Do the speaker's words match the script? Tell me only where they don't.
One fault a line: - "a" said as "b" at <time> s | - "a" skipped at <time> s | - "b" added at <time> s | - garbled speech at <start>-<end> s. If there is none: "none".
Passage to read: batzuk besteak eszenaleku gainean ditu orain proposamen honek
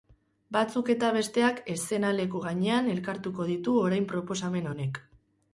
- "eta" added at 0.9 s
- "elkartuko" added at 3.0 s